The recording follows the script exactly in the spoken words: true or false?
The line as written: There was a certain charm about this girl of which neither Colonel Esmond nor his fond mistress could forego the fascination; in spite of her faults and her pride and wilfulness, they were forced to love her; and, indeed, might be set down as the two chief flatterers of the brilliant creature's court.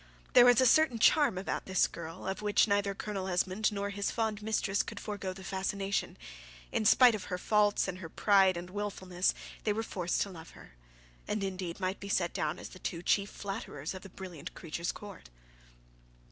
true